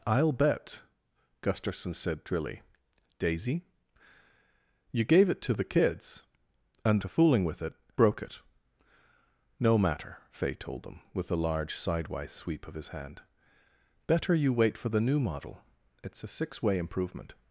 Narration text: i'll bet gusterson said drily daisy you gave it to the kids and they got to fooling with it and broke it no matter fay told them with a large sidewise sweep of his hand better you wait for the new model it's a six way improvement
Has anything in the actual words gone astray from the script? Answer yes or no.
yes